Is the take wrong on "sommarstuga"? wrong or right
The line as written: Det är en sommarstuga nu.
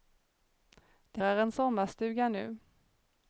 right